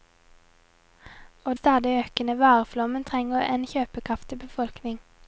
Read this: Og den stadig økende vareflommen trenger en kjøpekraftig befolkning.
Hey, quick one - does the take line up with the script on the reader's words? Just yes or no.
no